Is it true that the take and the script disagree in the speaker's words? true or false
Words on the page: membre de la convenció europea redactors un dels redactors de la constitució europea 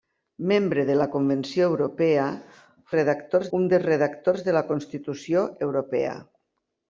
false